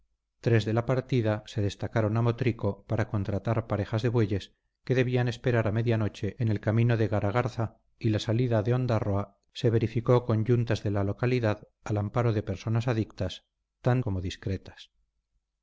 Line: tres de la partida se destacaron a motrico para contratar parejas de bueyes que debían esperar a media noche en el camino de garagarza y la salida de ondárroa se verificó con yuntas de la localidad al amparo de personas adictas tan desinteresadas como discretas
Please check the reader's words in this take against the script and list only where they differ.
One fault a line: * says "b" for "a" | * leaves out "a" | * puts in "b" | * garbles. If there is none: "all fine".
* leaves out "desinteresadas"